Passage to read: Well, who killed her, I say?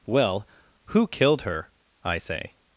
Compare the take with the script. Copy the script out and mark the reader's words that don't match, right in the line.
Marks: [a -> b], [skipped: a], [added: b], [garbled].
Well, who killed her, I say?